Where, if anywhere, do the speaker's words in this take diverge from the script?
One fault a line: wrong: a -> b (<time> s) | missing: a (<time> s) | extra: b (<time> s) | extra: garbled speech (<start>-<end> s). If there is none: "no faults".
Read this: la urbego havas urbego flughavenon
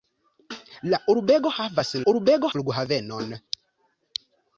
no faults